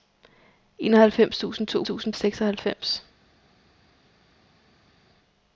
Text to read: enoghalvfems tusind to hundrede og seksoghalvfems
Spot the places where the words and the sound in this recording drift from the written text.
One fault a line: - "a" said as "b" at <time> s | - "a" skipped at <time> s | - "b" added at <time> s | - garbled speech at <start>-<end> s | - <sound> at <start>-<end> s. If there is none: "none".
- "hundrede" said as "tusind" at 1.8 s